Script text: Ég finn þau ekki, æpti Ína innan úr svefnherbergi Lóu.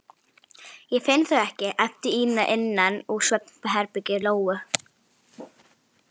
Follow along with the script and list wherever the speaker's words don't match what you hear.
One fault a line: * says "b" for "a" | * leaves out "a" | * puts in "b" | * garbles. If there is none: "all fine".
all fine